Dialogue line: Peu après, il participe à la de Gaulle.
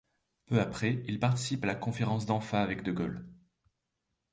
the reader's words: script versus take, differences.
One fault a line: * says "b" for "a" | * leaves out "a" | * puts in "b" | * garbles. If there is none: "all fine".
* puts in "conférence d'Anfa avec"